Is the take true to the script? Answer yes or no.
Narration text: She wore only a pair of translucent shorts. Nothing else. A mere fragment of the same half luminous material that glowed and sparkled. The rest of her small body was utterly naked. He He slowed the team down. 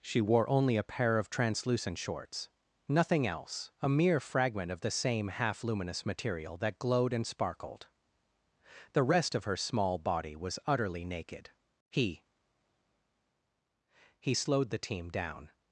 yes